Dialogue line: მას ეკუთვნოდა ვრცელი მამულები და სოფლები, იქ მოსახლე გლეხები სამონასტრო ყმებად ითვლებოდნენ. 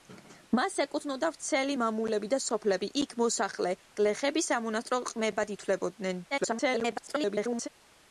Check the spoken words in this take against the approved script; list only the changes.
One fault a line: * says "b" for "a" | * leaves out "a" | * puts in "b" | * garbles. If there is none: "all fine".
* garbles